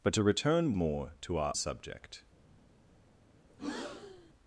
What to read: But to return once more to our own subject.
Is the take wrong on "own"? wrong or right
wrong